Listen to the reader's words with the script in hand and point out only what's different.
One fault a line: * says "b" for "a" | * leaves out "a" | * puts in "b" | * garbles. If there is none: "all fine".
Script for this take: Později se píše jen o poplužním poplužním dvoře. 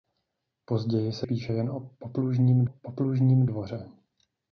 all fine